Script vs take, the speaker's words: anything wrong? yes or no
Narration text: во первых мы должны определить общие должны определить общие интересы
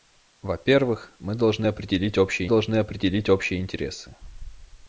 no